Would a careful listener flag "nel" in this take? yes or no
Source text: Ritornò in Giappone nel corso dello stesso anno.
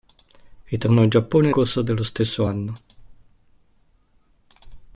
yes